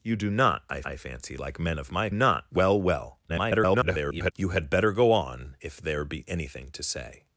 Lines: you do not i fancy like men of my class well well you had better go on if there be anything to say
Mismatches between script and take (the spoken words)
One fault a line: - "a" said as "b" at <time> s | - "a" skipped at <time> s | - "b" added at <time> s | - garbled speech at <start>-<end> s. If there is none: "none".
- "i" added at 0.8 s
- "class" said as "not" at 2.1 s
- garbled speech at 3.3-4.3 s